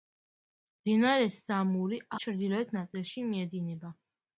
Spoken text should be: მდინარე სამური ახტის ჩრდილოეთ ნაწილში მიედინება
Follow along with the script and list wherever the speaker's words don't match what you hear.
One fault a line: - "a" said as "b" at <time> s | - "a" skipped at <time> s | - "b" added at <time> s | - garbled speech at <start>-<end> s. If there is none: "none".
- "ახტის" skipped at 2.0 s